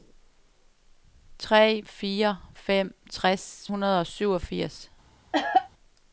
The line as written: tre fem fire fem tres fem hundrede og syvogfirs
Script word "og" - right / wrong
right